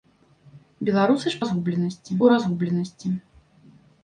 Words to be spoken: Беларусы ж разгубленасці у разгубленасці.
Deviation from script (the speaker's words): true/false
false